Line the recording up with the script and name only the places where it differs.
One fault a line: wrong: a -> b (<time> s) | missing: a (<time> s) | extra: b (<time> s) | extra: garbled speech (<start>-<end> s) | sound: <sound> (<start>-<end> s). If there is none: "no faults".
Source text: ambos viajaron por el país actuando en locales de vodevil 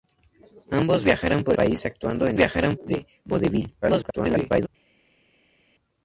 missing: el (1.6 s)
wrong: locales -> viajaron (2.4 s)
extra: garbled speech (3.8-4.7 s)